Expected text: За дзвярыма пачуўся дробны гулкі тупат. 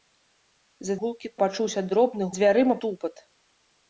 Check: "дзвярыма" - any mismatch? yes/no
yes